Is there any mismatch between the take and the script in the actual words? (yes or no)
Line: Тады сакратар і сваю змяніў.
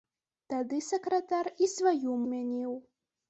no